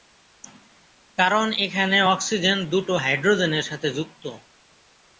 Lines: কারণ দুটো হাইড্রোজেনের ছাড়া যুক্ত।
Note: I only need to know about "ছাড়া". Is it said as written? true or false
false